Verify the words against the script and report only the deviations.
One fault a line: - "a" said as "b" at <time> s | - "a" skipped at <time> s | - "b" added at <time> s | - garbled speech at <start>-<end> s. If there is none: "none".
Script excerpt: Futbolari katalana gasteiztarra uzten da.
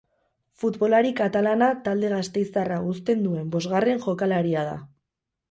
- "talde" added at 1.9 s
- "duen bosgarren jokalaria" added at 3.3 s